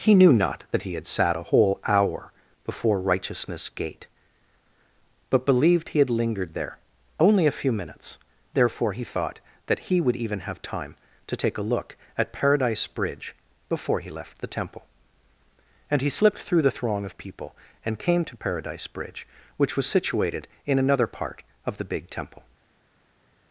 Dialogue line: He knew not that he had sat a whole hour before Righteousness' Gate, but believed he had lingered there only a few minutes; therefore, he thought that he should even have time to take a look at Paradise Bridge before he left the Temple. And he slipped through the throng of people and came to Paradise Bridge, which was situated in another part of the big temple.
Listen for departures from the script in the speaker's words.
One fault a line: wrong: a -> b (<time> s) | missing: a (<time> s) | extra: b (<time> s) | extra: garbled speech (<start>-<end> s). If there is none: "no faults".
wrong: should -> would (10.0 s)